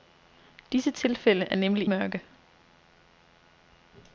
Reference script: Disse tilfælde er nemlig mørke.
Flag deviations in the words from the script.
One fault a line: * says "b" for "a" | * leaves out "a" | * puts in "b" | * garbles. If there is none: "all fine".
all fine